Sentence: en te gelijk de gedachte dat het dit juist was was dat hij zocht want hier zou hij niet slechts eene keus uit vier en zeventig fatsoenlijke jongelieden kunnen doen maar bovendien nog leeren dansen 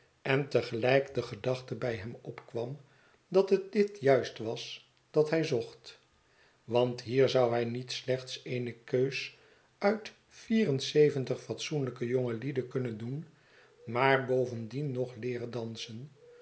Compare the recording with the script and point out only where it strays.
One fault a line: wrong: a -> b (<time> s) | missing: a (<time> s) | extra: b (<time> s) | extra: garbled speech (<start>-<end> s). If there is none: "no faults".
extra: bij hem opkwam (1.8 s)
missing: was (4.9 s)